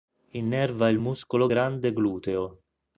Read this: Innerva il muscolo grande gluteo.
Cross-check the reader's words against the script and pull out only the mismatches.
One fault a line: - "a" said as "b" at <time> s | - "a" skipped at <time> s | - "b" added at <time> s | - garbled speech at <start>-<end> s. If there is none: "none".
none